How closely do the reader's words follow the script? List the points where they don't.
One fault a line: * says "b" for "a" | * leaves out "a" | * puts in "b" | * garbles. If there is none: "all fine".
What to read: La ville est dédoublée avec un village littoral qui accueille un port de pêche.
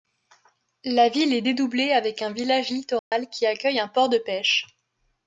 all fine